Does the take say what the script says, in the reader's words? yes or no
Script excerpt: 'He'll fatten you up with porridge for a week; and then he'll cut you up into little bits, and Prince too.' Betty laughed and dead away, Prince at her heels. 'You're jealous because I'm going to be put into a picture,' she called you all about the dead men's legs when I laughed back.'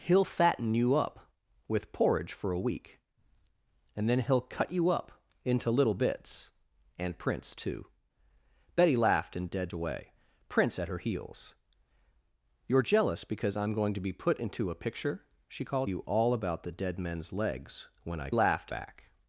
yes